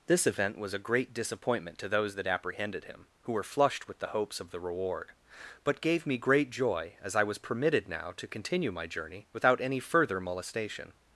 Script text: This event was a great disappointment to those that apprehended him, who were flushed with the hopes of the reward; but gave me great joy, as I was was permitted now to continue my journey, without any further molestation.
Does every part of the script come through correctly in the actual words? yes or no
no